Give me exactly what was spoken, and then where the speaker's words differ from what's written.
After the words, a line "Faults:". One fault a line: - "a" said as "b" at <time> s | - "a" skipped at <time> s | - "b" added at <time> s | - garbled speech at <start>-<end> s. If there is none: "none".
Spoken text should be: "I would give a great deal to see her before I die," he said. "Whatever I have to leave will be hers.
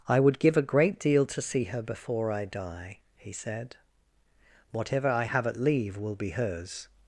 "I would give a great deal to see her before I die," he said. "Whatever I have at leave will be hers.
Faults:
- "to" said as "at" at 5.5 s